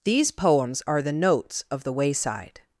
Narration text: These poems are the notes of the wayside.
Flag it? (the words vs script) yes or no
no